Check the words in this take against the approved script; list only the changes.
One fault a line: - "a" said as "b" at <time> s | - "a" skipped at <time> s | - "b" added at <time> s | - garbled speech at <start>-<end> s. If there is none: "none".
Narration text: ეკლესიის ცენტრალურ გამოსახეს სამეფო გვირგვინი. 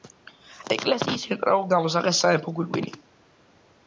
none